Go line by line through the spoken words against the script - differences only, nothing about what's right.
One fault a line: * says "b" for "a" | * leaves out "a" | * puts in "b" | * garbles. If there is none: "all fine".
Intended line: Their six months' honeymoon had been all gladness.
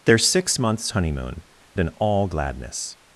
* leaves out "had"